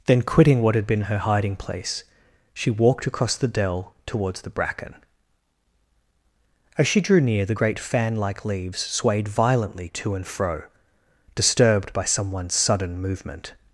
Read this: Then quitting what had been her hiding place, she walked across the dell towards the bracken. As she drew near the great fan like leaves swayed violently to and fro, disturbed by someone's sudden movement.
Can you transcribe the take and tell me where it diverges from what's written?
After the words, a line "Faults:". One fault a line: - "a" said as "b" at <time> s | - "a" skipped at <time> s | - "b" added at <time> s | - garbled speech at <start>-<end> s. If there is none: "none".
Then quitting what had been her hiding place, she walked across the dell towards the bracken. As she drew near the great fan like leaves swayed violently to and fro, disturbed by someone's sudden movement.
Faults:
none